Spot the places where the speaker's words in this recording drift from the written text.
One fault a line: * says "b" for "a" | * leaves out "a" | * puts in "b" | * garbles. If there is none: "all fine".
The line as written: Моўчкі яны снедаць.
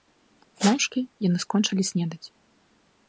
* puts in "скончылі"